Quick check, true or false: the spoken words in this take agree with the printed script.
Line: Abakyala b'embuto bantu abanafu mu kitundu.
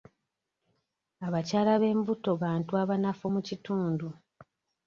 true